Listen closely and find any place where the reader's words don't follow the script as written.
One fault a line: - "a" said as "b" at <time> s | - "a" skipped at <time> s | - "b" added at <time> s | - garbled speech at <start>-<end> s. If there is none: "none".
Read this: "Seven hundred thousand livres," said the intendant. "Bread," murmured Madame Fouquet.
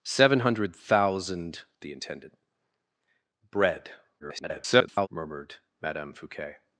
- "livres said" skipped at 1.6 s
- garbled speech at 4.2-5.1 s